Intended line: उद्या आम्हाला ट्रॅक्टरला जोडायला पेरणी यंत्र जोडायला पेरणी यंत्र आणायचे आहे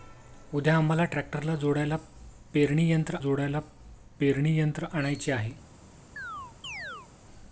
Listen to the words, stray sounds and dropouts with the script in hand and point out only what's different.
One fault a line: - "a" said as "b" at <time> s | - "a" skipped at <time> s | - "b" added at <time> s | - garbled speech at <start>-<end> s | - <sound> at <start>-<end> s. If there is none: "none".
- chirp at 6.2-7.1 s